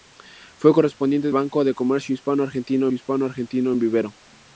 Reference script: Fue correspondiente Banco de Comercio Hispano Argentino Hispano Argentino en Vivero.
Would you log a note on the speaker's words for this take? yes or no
no